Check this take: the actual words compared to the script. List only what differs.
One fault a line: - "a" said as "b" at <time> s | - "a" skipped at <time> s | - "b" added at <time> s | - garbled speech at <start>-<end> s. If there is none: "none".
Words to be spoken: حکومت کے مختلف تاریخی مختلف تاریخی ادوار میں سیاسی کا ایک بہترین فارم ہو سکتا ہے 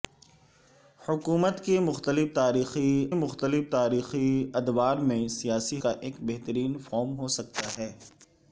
none